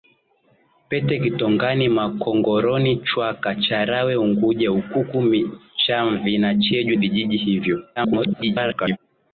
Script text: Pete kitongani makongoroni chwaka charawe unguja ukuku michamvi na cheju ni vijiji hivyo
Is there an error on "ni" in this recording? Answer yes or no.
yes